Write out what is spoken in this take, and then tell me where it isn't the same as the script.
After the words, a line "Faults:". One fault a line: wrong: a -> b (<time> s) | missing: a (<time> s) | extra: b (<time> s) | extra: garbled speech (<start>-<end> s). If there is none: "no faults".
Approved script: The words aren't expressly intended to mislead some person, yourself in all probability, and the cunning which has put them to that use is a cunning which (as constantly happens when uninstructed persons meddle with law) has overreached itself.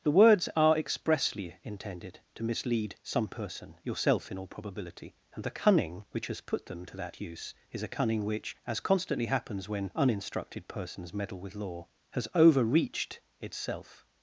The words are expressly intended to mislead some person, yourself in all probability, and the cunning which has put them to that use is a cunning which (as constantly happens when uninstructed persons meddle with law) has overreached itself.
Faults:
wrong: aren't -> are (0.6 s)